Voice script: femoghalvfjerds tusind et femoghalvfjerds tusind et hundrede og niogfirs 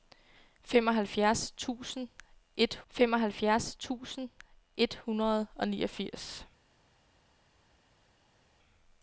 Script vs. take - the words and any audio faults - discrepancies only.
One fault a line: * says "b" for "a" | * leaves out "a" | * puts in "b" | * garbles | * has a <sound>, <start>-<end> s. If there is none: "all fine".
all fine